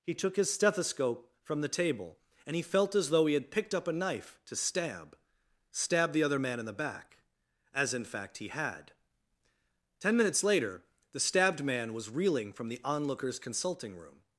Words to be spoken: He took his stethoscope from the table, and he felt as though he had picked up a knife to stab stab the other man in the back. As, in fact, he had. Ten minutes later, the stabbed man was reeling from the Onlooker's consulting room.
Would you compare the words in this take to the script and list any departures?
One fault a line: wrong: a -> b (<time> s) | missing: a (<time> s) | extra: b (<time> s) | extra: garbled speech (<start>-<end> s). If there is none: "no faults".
no faults